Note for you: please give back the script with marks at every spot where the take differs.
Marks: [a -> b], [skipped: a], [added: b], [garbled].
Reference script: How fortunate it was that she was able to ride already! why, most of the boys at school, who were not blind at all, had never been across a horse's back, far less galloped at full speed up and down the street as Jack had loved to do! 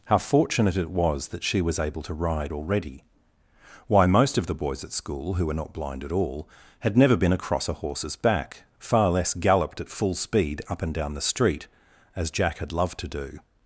How fortunate it was that she was able to ride already! why, most of the boys at school, who were not blind at all, had never been across a horse's back, far less galloped at full speed up and down the street as Jack had loved to do!